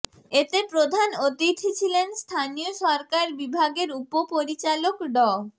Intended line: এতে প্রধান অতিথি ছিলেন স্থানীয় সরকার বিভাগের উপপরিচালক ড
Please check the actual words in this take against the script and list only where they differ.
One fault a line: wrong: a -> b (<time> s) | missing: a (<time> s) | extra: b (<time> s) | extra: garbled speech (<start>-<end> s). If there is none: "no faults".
no faults